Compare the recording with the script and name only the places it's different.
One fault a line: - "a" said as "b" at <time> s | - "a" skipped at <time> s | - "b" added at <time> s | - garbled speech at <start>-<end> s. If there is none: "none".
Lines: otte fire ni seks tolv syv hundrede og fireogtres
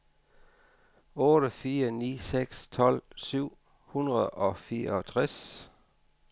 none